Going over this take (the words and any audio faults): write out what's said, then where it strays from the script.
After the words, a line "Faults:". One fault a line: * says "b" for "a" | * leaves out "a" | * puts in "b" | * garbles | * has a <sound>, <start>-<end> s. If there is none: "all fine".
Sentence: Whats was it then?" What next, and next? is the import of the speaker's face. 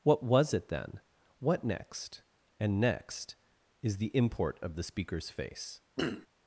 What was it then?" What next, and next? is the import of the speaker's face.
Faults:
* says "What" for "Whats"
* has a throat clearing, 6.0-6.3 s